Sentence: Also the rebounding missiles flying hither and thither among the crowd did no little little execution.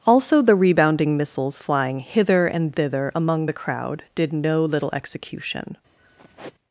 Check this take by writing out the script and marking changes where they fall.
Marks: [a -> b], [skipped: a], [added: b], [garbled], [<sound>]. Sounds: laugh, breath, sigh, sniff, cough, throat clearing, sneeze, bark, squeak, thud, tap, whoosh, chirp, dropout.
Also the rebounding missiles flying hither and thither among the crowd did no little [skipped: little] execution. [sigh]